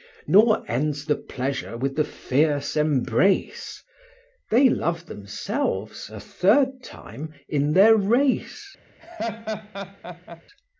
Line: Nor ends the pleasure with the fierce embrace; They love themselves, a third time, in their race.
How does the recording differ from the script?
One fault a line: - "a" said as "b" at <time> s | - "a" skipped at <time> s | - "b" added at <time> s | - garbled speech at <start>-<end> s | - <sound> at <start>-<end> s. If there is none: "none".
- laugh at 9.0-10.4 s